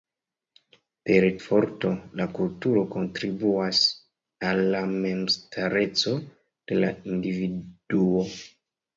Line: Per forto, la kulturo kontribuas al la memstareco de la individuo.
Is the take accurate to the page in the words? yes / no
yes